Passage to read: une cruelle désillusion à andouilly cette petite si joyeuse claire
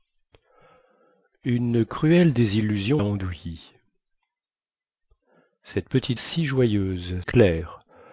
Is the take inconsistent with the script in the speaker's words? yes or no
no